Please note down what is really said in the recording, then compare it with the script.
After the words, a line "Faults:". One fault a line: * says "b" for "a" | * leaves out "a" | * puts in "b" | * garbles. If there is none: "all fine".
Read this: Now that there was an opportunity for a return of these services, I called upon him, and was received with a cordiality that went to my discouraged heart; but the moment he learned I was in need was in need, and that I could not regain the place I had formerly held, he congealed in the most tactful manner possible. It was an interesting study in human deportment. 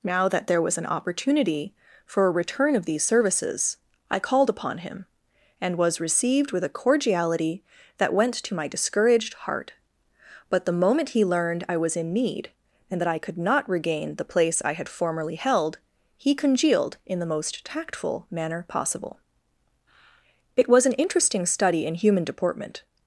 Now that there was an opportunity for a return of these services, I called upon him, and was received with a cordiality that went to my discouraged heart; but the moment he learned I was in need, and that I could not regain the place I had formerly held, he congealed in the most tactful manner possible. It was an interesting study in human deportment.
Faults:
* leaves out "was in need"